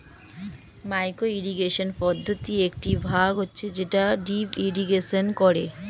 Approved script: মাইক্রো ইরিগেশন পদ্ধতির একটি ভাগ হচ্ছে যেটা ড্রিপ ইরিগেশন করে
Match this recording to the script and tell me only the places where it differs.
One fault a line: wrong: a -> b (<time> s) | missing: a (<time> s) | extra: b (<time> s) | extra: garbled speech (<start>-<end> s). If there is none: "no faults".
no faults